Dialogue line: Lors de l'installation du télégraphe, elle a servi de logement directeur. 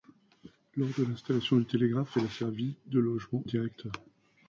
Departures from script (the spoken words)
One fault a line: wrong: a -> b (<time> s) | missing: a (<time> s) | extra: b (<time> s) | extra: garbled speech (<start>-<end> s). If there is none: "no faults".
no faults